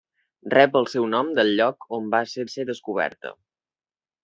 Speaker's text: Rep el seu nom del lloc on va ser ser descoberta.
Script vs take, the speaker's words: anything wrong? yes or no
no